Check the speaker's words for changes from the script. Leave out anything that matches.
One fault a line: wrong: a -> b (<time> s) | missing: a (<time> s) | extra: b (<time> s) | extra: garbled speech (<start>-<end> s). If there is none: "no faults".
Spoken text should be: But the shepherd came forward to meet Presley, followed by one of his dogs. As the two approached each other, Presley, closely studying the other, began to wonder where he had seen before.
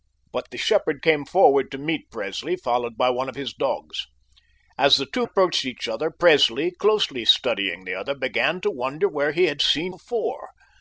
no faults